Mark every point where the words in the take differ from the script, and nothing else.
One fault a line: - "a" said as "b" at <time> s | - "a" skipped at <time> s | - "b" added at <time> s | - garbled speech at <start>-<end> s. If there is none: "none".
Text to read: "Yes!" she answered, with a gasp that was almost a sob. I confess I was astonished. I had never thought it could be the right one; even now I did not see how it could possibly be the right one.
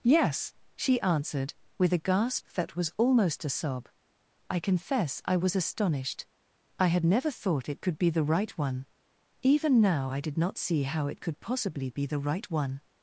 none